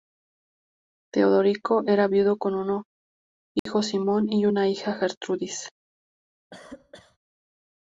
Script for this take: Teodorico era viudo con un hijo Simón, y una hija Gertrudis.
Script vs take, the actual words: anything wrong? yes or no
no